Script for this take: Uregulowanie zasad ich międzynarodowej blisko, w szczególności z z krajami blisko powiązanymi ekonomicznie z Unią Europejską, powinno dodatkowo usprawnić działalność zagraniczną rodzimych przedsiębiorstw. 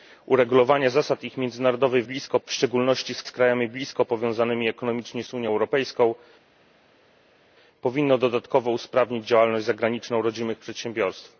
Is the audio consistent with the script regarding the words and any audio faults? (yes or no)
yes